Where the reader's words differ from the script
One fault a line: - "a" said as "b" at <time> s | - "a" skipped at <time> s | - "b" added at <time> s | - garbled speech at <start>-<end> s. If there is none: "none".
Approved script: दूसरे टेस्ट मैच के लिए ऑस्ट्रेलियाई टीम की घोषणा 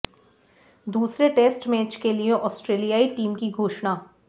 none